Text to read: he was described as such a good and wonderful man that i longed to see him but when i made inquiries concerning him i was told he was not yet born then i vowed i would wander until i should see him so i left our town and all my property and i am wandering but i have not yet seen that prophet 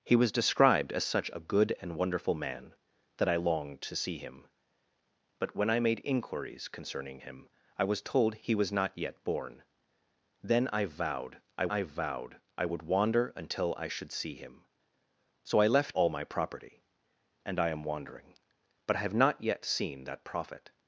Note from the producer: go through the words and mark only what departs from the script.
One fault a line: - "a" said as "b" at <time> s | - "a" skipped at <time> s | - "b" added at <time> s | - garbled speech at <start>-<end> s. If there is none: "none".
- "i vowed i" added at 11.7 s
- "our town and" skipped at 16.0 s